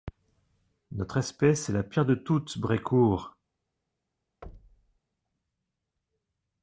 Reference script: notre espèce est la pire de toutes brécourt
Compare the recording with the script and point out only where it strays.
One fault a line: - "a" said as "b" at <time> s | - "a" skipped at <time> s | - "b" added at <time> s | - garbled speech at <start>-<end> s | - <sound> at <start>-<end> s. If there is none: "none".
- thud at 4.4-5.0 s